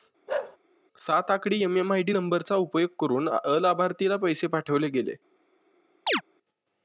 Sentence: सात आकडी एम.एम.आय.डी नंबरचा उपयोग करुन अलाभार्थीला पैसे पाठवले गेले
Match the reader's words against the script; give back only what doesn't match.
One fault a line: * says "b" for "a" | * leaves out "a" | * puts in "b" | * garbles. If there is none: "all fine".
all fine